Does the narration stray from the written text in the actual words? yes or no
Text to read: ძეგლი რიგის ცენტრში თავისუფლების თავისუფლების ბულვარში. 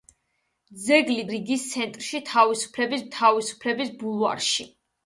no